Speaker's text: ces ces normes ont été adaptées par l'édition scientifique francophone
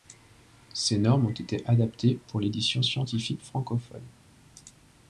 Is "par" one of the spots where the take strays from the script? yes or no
yes